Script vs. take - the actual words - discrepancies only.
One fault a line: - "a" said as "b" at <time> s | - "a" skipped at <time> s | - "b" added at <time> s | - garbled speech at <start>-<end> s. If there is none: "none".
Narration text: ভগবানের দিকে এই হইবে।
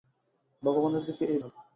none